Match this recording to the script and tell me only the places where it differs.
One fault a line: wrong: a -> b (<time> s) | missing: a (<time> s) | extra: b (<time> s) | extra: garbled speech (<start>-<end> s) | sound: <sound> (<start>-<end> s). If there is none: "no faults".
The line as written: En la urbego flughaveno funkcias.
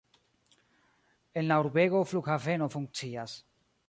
no faults